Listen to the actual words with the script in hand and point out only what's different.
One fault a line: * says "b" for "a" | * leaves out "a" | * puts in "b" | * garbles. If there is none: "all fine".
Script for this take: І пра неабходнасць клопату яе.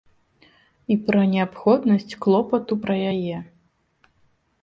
* puts in "пра"